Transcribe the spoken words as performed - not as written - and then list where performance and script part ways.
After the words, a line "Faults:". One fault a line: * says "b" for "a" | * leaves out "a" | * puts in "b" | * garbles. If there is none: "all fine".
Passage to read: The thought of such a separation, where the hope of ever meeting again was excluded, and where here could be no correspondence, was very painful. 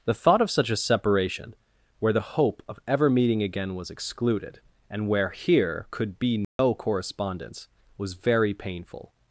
The thought of such a separation, where the hope of ever meeting again was excluded, and where here could be no correspondence, was very painful.
Faults:
all fine